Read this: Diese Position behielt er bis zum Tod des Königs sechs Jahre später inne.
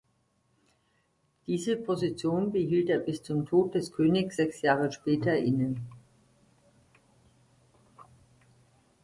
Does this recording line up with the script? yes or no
yes